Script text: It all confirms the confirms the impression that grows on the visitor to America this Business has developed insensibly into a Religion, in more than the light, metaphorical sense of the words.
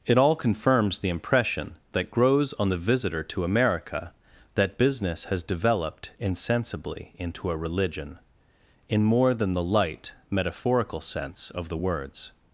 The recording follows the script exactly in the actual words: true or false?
false